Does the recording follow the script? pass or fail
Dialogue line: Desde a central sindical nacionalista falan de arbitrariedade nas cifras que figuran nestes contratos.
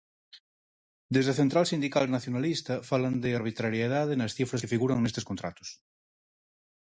pass